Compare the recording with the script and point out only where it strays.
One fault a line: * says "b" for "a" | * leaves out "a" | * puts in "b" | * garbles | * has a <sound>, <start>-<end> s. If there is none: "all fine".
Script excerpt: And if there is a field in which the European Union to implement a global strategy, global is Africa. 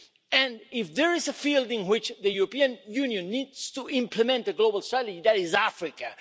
* puts in "needs"
* says "that" for "global"